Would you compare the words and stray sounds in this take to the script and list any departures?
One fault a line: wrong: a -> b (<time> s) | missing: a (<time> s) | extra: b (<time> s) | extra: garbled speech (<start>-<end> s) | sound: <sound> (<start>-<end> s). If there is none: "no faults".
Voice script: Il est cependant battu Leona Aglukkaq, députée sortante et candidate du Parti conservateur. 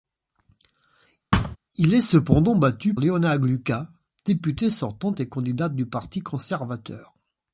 sound: thud (1.3-1.6 s)